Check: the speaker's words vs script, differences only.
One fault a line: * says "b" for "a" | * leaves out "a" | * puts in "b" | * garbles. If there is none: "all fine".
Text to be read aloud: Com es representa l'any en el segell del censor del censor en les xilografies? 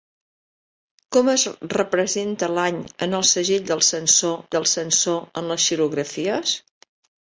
all fine